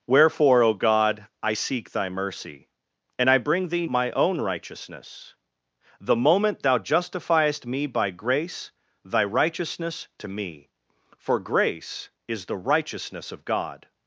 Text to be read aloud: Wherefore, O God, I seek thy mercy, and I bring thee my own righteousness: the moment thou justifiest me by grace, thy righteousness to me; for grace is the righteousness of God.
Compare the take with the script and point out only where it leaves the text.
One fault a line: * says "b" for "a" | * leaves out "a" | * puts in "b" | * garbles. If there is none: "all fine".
all fine